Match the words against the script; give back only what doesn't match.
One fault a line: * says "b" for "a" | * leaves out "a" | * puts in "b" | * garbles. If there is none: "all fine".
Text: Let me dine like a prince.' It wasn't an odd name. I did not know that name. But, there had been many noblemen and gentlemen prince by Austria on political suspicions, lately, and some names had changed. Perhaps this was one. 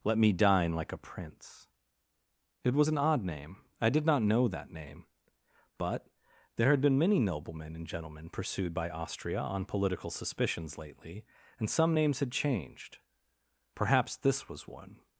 * says "was" for "wasn't"
* says "pursued" for "prince"